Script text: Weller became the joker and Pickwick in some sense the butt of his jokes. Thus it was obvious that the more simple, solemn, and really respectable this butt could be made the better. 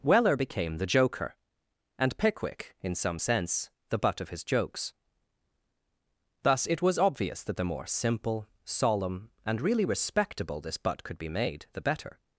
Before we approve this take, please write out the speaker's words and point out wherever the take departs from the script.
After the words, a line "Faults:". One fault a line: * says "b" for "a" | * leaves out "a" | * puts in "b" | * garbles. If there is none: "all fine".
Weller became the joker and Pickwick in some sense the butt of his jokes. Thus it was obvious that the more simple, solemn, and really respectable this butt could be made the better.
Faults:
all fine